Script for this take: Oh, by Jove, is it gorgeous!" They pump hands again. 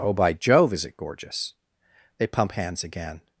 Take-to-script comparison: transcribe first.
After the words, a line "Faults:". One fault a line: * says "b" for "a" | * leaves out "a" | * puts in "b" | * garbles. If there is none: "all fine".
Oh, by Jove, is it gorgeous!" They pump hands again.
Faults:
all fine